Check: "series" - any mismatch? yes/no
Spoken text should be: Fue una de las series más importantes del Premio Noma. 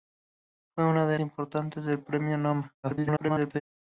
yes